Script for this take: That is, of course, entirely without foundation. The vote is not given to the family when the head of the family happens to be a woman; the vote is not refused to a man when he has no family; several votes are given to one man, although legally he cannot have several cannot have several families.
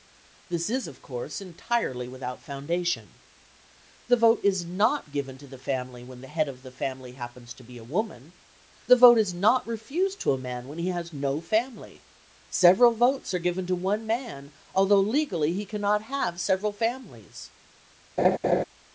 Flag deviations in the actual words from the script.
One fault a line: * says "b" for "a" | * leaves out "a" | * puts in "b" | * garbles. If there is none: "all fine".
* says "This" for "That"
* leaves out "cannot have several"